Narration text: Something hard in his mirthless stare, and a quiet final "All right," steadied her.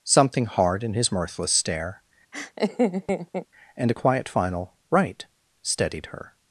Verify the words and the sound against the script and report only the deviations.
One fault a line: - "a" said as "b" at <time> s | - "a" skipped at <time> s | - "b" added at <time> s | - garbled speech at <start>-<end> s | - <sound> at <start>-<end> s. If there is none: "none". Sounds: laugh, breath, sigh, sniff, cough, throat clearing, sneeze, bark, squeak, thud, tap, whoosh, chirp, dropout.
- laugh at 2.3-3.5 s
- "All" skipped at 4.7 s